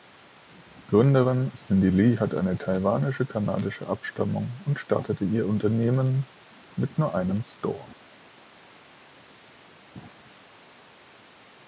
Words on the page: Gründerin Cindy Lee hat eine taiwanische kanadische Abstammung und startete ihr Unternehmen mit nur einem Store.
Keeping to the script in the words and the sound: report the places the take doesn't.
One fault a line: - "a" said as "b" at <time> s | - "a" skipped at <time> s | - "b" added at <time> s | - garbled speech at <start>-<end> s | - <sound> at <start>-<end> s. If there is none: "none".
none